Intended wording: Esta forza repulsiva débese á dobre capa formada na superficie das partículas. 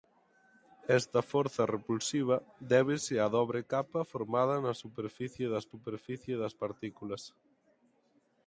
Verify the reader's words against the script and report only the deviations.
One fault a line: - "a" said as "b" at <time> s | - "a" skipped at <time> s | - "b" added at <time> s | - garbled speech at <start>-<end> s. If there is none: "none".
- "superficie das" added at 5.7 s